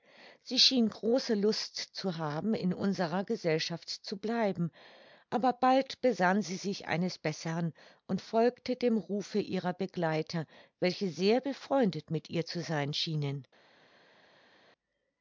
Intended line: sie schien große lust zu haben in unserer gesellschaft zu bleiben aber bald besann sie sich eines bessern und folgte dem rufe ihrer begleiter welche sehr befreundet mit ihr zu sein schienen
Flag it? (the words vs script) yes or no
no